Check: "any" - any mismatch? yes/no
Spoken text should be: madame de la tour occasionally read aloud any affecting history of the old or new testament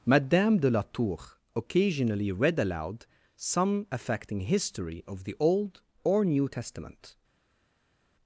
yes